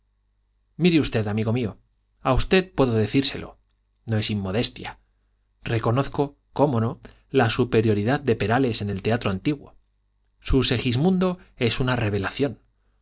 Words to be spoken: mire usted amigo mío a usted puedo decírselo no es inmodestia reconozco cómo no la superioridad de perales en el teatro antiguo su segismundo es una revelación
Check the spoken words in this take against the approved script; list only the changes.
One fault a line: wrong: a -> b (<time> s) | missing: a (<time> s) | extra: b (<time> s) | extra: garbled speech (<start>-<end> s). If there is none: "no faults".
no faults